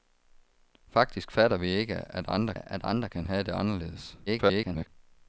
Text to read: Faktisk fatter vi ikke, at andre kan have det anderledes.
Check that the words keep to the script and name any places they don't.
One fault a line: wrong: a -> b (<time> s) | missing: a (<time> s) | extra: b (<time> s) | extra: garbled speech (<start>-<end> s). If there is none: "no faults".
extra: at andre (2.5 s)
extra: garbled speech (4.3-4.9 s)